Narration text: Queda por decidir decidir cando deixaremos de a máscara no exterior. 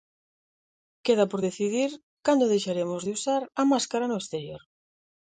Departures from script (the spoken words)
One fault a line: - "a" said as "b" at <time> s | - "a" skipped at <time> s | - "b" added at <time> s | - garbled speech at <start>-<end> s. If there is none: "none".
- "decidir" skipped at 1.9 s
- "usar" added at 3.2 s